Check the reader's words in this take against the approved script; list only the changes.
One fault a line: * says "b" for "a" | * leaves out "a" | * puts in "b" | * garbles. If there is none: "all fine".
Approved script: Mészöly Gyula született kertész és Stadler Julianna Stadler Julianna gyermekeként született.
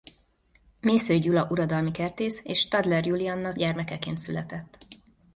* says "uradalmi" for "született"
* leaves out "Stadler Julianna"